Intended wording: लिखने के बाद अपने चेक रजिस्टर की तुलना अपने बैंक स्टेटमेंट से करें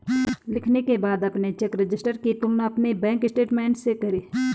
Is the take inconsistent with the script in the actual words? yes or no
no